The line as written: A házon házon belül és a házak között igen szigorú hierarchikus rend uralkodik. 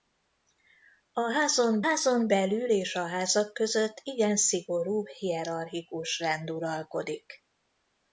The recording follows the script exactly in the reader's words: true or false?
true